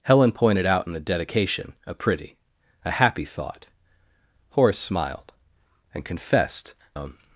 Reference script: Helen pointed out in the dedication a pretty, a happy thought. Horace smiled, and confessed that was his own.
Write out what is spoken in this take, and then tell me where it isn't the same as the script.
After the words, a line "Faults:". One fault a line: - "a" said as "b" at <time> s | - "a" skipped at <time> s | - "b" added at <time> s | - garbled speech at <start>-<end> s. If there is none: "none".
Helen pointed out in the dedication a pretty, a happy thought. Horace smiled, and confessed own.
Faults:
- "that was his" skipped at 6.7 s